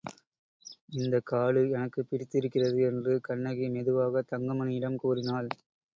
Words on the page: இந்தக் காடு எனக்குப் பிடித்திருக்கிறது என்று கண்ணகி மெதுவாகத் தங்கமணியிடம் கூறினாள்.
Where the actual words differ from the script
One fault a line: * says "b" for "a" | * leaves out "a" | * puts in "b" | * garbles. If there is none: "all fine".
all fine